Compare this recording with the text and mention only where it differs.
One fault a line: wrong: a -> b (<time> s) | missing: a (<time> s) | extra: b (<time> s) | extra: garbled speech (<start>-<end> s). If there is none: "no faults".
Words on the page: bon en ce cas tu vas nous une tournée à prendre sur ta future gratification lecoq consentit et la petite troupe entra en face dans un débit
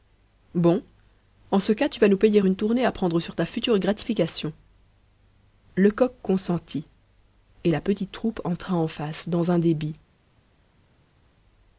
extra: payer (2.2 s)